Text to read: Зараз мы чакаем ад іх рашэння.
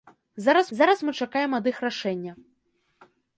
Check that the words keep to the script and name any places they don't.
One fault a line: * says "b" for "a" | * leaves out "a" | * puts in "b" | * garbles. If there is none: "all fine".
* puts in "зараз"